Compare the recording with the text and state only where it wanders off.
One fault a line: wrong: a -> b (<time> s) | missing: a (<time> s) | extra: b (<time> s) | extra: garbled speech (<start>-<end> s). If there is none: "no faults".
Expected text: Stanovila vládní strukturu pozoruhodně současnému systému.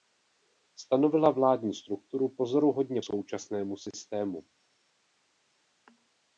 no faults